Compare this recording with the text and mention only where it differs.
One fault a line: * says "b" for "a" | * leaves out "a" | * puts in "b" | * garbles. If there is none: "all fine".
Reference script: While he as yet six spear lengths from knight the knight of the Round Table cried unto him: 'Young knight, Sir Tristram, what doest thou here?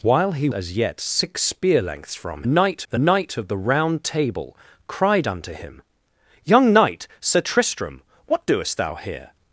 all fine